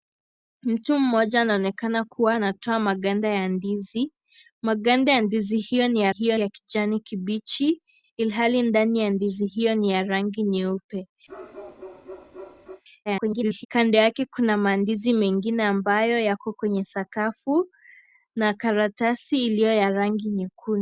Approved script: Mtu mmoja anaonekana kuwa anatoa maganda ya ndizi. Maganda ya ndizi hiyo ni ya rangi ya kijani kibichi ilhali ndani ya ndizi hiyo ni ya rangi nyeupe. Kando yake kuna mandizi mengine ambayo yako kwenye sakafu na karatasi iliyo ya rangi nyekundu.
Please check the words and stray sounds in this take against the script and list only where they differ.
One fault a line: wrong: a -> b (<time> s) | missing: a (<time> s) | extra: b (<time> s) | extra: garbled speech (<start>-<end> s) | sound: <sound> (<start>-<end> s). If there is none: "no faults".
wrong: rangi -> hiyo (6.1 s)
sound: bark (11.3-12.8 s)
extra: garbled speech (13.1-13.7 s)